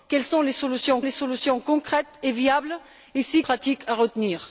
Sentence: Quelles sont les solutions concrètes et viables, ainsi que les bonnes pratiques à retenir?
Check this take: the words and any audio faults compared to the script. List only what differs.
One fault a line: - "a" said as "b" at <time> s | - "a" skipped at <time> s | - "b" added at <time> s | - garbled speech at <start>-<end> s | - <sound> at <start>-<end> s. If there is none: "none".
- "les solutions" added at 1.0 s
- "que les bonnes" skipped at 3.4 s